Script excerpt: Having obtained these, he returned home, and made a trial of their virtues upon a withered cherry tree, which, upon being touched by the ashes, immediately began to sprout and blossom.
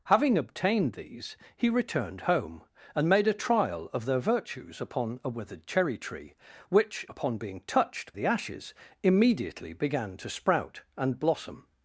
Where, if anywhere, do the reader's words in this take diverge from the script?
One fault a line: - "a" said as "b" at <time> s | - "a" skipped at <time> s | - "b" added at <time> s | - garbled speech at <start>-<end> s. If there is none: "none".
- "by" skipped at 8.1 s